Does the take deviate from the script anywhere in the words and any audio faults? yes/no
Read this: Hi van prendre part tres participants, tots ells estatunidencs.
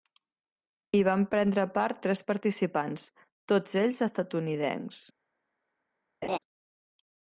yes